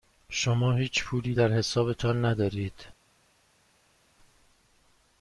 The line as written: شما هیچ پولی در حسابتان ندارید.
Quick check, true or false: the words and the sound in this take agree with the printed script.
true